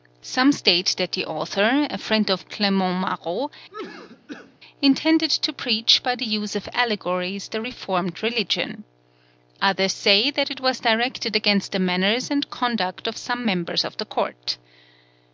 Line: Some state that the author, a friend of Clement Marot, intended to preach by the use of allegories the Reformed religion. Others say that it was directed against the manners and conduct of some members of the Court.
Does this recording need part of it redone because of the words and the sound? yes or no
yes